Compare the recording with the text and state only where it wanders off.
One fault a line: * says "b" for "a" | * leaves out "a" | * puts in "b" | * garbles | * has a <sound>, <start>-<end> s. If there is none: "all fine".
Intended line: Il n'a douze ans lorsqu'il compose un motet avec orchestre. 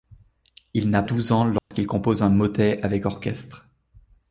* has a dropout, 1.6-1.7 s